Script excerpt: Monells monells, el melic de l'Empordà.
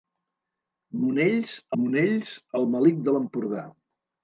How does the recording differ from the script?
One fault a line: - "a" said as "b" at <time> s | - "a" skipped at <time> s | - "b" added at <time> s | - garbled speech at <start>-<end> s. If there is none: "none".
none